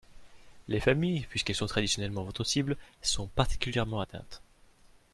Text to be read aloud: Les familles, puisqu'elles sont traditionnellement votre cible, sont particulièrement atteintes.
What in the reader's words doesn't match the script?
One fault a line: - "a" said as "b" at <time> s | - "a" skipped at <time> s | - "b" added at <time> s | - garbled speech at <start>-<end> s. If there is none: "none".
none